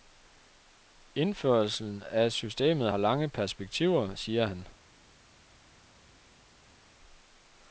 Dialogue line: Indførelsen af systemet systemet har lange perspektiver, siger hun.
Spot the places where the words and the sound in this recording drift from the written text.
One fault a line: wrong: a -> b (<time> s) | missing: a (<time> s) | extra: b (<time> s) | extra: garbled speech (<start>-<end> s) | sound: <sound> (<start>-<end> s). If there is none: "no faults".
missing: systemet (2.9 s)
wrong: hun -> han (4.4 s)